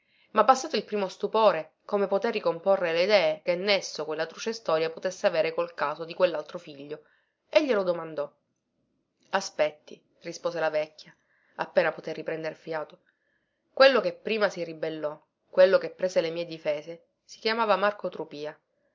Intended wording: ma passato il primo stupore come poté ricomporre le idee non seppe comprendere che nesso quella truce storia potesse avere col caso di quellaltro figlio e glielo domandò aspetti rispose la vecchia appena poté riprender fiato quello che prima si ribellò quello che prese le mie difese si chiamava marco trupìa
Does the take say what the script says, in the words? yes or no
no